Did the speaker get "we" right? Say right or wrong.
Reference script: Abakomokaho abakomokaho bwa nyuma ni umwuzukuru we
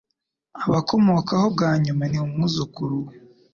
right